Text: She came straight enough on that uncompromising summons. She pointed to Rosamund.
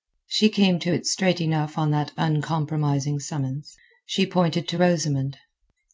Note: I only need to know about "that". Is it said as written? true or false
true